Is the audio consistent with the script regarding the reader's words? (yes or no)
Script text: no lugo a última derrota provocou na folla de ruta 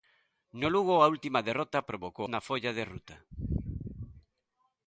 yes